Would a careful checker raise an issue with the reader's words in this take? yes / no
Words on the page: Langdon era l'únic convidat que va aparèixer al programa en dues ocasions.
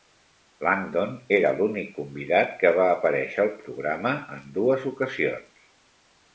no